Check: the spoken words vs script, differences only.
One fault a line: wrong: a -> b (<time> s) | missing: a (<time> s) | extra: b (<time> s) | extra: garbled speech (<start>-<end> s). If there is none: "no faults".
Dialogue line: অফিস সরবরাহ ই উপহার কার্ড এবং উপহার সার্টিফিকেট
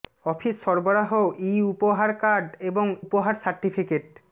no faults